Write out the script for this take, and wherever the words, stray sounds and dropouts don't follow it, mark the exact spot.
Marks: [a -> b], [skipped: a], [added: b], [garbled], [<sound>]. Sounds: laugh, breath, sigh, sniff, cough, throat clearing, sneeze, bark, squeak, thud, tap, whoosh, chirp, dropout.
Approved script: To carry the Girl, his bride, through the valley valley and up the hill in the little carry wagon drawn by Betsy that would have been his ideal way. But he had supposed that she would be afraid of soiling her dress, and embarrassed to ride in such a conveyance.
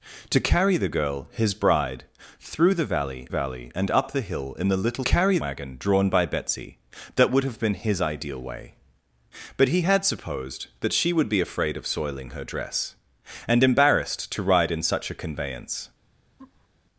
To carry the Girl, his bride, through the valley valley and up the hill in the little carry wagon drawn by Betsy that would have been his ideal way. But he had supposed that she would be afraid of soiling her dress, and embarrassed to ride in such a conveyance. [laugh]